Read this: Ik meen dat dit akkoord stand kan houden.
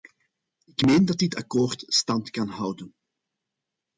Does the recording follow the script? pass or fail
pass